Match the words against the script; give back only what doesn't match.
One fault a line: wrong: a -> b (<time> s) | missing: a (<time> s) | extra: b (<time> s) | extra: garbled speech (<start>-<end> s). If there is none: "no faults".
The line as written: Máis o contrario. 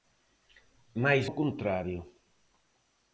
no faults